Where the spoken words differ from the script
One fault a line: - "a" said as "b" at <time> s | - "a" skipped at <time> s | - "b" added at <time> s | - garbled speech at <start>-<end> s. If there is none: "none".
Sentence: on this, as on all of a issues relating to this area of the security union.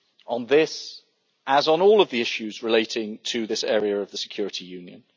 - "a" said as "the" at 2.1 s